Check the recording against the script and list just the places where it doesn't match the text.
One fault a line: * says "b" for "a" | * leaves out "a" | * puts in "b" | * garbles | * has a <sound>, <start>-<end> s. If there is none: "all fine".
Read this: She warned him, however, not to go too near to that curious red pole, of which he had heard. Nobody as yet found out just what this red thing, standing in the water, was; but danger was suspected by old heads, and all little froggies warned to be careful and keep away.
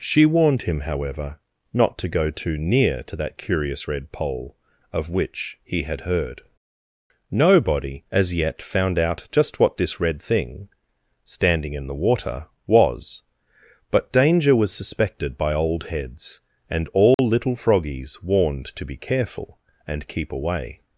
* has a dropout, 17.1-17.2 s